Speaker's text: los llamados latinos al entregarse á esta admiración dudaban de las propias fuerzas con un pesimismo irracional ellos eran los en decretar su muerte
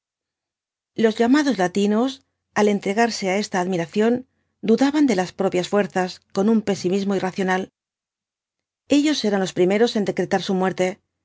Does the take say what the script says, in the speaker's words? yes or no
no